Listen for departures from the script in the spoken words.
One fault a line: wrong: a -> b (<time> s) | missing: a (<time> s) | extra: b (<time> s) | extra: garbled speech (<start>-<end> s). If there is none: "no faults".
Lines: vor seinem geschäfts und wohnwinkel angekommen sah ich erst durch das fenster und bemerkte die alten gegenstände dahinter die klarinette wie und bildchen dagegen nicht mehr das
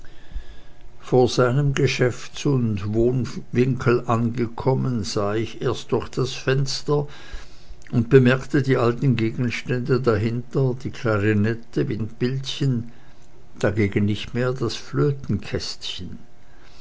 no faults